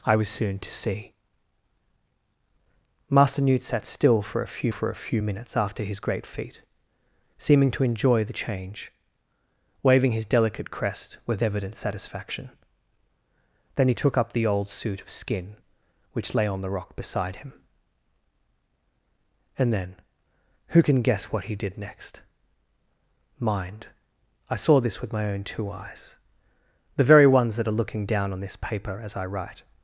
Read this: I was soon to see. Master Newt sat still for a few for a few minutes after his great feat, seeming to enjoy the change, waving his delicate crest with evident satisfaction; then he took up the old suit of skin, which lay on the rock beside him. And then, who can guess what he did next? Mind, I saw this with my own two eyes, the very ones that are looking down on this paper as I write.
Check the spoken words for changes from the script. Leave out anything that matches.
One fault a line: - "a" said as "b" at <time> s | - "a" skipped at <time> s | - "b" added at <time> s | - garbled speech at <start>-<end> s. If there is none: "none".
none